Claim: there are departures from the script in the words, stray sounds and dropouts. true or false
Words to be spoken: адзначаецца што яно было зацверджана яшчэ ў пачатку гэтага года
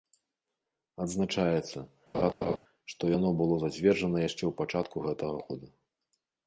true